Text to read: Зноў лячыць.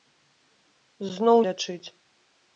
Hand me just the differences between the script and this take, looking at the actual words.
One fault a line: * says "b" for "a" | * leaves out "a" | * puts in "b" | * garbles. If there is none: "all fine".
all fine